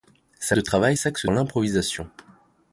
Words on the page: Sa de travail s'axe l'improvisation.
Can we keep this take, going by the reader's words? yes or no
yes